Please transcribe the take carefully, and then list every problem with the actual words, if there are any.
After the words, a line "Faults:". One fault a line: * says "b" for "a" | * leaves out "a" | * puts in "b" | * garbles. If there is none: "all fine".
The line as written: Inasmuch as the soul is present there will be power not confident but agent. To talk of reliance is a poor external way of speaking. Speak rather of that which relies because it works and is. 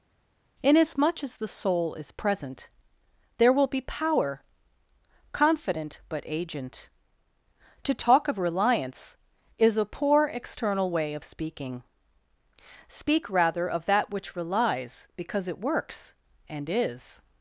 Inasmuch as the soul is present there will be power confident but agent. To talk of reliance is a poor external way of speaking. Speak rather of that which relies because it works and is.
Faults:
* leaves out "not"